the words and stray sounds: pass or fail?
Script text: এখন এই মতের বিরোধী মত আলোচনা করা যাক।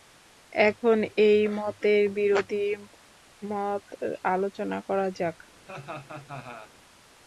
fail